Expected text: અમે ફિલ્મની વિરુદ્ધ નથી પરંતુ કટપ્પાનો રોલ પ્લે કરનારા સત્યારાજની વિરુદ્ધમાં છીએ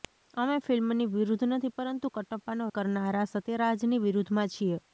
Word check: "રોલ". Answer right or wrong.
wrong